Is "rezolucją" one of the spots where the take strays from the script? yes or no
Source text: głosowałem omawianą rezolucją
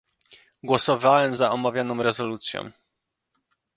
no